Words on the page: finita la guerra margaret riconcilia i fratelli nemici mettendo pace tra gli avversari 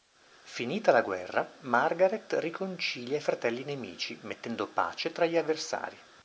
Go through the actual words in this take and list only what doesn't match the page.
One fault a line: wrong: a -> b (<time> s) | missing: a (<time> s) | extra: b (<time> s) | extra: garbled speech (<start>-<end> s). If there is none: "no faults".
no faults